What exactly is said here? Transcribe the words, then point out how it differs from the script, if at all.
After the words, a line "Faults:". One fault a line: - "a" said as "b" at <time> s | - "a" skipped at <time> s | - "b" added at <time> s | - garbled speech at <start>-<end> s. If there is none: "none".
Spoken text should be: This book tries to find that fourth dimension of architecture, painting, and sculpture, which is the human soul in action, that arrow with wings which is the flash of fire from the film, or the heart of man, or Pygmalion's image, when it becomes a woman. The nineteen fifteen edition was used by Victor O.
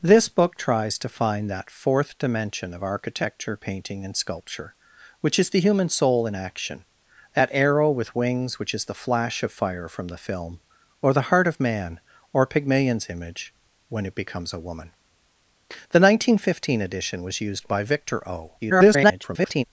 This book tries to find that fourth dimension of architecture, painting, and sculpture, which is the human soul in action, that arrow with wings which is the flash of fire from the film, or the heart of man, or Pygmalion's image, when it becomes a woman. The nineteen fifteen edition was used by Victor O. [garbled]
Faults:
- garbled speech at 18.6-19.6 s